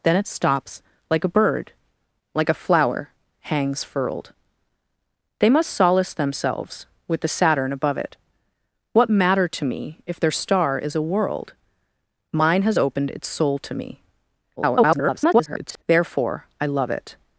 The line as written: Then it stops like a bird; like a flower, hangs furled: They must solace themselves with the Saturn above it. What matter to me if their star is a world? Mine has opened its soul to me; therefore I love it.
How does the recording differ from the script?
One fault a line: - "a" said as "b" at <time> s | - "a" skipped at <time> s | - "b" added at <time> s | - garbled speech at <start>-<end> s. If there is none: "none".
- garbled speech at 14.6-15.8 s